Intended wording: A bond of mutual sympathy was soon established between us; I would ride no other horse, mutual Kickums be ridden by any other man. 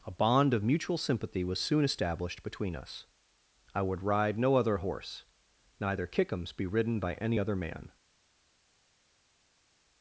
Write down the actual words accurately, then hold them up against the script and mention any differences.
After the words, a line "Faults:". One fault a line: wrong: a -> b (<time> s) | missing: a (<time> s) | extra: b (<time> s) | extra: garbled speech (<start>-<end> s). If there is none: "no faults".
A bond of mutual sympathy was soon established between us; I would ride no other horse, neither Kickums be ridden by any other man.
Faults:
wrong: mutual -> neither (5.8 s)